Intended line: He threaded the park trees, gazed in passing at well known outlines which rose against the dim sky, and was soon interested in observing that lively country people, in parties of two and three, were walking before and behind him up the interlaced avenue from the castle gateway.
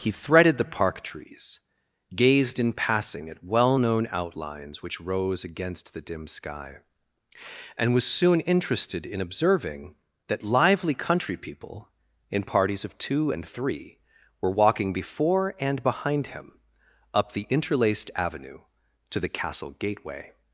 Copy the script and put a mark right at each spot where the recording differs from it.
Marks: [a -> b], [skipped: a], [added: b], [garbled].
He threaded the park trees, gazed in passing at well known outlines which rose against the dim sky, and was soon interested in observing that lively country people, in parties of two and three, were walking before and behind him up the interlaced avenue [from -> to] the castle gateway.